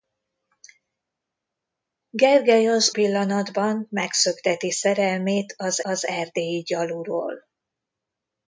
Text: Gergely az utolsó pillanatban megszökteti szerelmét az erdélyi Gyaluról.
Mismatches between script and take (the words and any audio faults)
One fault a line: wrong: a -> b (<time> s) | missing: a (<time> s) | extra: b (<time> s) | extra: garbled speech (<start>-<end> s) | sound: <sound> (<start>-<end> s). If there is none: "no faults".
missing: utolsó (3.0 s)
extra: az (5.8 s)